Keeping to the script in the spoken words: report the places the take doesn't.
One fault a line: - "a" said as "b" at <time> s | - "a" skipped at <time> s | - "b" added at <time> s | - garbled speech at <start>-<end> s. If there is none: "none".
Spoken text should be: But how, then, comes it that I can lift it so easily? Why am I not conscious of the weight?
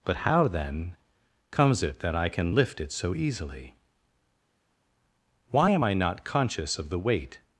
none